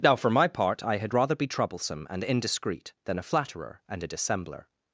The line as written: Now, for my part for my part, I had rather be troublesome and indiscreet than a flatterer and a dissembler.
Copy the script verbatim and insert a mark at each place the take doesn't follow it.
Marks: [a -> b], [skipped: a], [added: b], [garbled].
Now, for my part [skipped: for my part,] I had rather be troublesome and indiscreet than a flatterer and a dissembler.